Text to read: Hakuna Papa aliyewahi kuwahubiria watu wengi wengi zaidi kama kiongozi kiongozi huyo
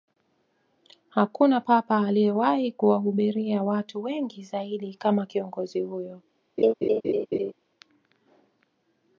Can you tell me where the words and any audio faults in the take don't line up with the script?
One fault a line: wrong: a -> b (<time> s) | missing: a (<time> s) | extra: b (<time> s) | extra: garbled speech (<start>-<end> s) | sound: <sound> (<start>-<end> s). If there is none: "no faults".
missing: wengi (4.4 s)
missing: kiongozi (5.8 s)
sound: laugh (6.6-7.5 s)